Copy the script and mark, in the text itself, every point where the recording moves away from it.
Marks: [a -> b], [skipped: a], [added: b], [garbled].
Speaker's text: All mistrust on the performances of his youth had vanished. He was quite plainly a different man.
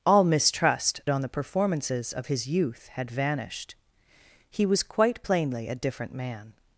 All mistrust on the performances of his youth had vanished. He was quite plainly a different man.